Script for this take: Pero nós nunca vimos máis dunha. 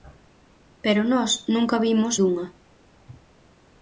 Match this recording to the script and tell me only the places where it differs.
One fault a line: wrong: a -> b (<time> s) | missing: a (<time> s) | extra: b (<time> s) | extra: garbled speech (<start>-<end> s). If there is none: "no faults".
missing: máis (2.1 s)